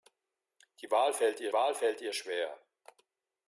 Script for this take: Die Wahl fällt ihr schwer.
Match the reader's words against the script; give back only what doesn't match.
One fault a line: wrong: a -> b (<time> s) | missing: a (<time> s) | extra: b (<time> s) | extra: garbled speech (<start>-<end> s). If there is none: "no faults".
extra: Wahl fällt ihr (1.5 s)